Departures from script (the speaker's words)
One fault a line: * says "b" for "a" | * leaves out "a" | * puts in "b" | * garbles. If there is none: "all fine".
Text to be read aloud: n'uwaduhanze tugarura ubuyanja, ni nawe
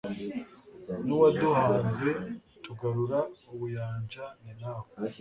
all fine